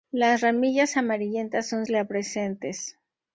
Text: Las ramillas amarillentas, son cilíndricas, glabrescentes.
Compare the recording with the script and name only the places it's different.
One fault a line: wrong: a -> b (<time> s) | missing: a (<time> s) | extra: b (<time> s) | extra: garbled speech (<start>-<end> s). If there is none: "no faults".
missing: cilíndricas (1.8 s)